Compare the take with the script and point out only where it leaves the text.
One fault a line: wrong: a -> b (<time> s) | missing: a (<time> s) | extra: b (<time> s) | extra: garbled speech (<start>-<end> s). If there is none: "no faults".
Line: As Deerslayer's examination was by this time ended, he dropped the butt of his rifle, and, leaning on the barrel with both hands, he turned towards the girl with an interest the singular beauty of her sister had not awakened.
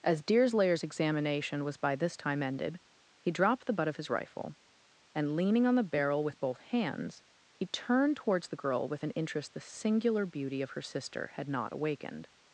no faults